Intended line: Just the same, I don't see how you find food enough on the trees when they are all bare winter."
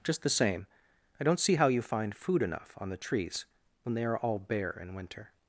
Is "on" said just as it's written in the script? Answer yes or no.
yes